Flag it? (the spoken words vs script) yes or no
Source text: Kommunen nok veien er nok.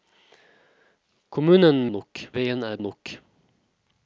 no